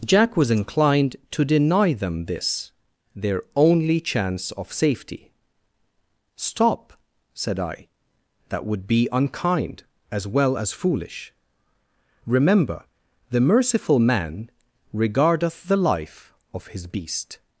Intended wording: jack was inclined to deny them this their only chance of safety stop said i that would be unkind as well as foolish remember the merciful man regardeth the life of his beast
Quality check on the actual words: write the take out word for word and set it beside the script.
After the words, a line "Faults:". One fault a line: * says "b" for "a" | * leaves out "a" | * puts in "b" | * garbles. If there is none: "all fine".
jack was inclined to deny them this their only chance of safety stop said i that would be unkind as well as foolish remember the merciful man regardeth the life of his beast
Faults:
all fine